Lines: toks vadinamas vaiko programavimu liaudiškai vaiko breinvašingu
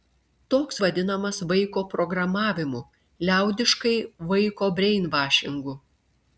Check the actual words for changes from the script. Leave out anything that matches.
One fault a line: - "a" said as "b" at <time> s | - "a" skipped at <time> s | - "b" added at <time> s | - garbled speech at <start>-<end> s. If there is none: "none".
none